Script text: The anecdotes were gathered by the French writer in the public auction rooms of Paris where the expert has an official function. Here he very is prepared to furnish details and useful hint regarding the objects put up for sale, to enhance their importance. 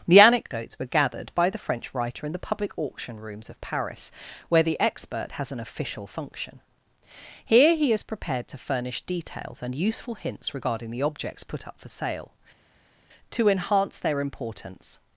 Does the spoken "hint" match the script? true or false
false